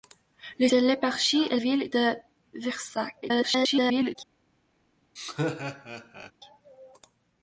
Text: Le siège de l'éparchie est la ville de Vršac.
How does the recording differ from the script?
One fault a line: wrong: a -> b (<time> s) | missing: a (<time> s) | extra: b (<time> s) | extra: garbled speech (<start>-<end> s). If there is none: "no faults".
missing: siège (0.7 s)
missing: la (1.6 s)
extra: garbled speech (3.2-4.2 s)